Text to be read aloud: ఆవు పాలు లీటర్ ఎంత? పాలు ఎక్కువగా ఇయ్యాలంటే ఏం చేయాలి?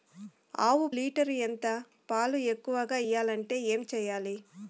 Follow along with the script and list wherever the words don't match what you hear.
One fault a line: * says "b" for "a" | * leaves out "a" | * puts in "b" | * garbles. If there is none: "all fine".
* leaves out "పాలు"